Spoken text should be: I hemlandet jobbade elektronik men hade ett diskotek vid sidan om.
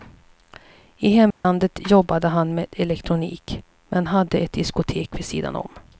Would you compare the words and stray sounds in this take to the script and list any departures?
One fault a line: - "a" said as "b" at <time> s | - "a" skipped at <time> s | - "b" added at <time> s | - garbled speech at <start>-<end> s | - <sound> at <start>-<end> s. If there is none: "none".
- dropout at 1.3-1.4 s
- "han med" added at 2.3 s